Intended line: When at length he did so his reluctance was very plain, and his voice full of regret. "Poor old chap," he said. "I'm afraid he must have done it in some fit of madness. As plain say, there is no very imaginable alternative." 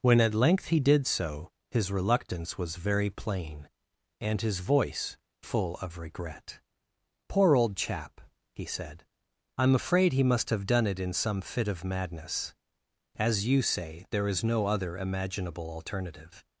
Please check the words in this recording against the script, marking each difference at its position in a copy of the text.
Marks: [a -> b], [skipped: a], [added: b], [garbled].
When at length he did so his reluctance was very plain, and his voice full of regret. "Poor old chap," he said. "I'm afraid he must have done it in some fit of madness. As [plain -> you] say, there is no [very -> other] imaginable alternative."